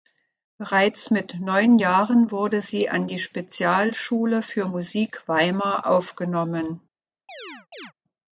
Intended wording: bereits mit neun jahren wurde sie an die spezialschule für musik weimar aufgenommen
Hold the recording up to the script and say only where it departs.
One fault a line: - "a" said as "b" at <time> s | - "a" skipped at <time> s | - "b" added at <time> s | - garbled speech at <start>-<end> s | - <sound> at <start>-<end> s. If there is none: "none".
- chirp at 7.3-7.9 s